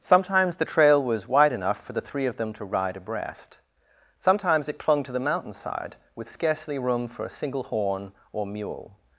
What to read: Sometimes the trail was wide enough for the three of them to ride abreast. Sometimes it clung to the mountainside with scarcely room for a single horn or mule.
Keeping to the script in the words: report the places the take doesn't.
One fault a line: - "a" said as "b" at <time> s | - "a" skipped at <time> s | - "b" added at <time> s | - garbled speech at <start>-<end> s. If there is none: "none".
none